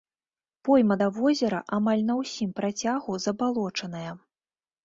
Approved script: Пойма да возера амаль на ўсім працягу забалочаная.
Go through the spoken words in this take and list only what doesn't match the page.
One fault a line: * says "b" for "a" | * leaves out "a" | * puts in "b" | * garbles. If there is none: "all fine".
all fine